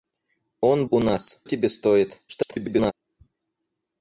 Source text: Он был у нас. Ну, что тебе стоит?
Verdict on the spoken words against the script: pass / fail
fail